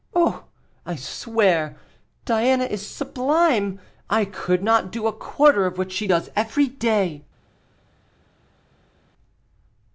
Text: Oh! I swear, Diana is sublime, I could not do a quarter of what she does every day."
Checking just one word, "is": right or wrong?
right